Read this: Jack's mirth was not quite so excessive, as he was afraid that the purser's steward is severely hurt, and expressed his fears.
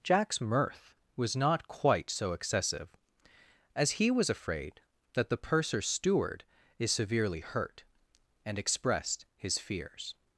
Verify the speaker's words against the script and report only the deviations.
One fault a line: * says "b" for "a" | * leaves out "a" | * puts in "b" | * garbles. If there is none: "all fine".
all fine